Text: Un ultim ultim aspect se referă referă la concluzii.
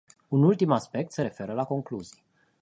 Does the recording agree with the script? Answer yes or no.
no